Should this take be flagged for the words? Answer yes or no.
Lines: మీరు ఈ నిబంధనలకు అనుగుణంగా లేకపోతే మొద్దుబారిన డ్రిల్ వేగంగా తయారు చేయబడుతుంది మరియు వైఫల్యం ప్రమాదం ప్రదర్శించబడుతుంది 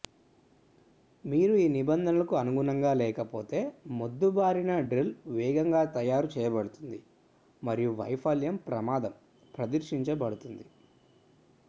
no